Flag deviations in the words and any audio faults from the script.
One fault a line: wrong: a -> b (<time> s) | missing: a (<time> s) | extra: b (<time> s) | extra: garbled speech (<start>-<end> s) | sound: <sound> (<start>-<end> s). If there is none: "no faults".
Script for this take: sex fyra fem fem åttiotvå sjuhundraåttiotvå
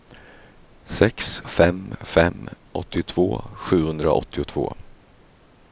missing: fyra (1.4 s)